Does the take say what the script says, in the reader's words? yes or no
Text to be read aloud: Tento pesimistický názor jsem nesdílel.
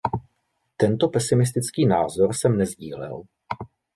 yes